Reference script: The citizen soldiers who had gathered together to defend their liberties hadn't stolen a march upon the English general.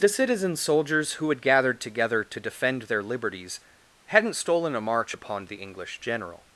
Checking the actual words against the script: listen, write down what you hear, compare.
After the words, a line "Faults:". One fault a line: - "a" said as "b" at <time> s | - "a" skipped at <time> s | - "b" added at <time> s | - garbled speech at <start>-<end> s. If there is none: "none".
The citizen soldiers who had gathered together to defend their liberties hadn't stolen a march upon the English general.
Faults:
none